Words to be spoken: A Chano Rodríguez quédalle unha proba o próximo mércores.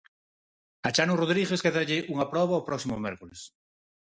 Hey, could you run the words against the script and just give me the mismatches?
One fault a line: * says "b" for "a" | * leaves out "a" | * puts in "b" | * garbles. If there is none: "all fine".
all fine